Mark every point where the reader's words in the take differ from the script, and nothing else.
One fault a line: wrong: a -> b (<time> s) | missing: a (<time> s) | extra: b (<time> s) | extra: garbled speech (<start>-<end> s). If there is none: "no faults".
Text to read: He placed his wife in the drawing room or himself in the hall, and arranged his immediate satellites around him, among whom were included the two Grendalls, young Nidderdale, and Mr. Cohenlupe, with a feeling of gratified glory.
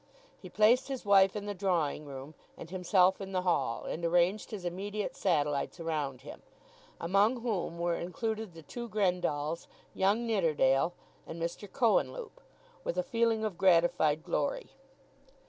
wrong: or -> and (2.6 s)